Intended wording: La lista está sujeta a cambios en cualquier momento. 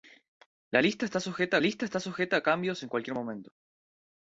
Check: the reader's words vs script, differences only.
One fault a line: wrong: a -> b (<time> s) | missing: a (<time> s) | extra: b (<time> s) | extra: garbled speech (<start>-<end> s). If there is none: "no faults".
extra: lista está sujeta (1.6 s)